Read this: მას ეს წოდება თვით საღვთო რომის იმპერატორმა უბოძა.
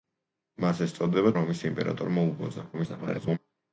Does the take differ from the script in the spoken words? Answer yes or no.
yes